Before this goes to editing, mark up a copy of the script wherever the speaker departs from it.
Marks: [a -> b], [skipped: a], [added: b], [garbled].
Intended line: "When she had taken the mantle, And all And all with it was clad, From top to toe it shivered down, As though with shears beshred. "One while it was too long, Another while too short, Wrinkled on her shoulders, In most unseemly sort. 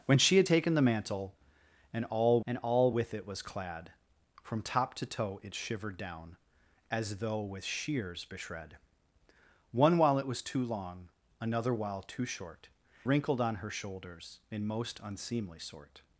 "When she had taken the mantle, And all And all with it was clad, From top to toe it shivered down, As though with shears beshred. "One while it was too long, Another while too short, Wrinkled on her shoulders, In most unseemly sort.